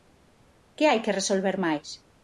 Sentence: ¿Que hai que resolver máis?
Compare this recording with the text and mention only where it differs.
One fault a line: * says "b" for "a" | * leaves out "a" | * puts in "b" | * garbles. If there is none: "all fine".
all fine